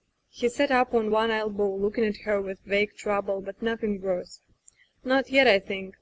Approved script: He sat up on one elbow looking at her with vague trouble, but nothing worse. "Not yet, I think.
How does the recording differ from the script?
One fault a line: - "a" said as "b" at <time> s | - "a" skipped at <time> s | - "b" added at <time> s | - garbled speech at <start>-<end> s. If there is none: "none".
none